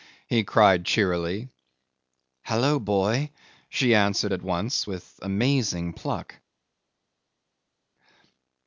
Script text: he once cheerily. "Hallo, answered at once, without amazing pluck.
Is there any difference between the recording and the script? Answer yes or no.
yes